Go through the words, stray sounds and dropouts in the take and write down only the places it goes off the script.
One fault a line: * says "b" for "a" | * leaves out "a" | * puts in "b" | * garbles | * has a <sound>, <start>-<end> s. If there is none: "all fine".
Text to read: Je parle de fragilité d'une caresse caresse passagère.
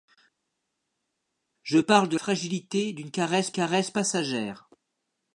all fine